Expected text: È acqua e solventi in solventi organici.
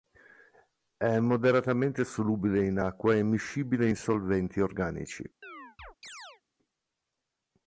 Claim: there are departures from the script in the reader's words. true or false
true